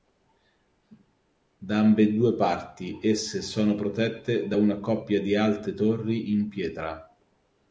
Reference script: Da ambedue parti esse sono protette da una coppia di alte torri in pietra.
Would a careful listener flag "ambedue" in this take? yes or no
no